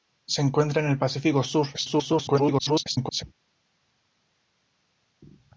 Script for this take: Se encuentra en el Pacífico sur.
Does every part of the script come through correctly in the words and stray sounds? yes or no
no